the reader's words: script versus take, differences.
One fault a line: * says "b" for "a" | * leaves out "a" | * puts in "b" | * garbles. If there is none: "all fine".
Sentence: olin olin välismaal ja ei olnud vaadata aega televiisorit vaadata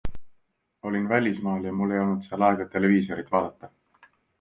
* leaves out "olin"
* puts in "mul"
* says "seal" for "vaadata"